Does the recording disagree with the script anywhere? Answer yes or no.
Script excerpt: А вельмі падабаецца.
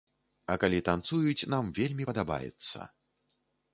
yes